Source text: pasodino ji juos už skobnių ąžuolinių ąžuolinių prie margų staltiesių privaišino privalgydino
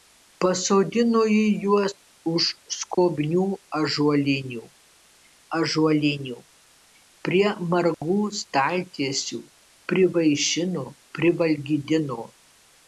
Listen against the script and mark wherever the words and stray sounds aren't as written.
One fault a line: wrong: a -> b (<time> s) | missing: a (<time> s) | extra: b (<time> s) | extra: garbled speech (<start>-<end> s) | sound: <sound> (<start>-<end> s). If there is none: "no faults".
sound: dropout (2.9-3.0 s)
sound: dropout (7.9-8.0 s)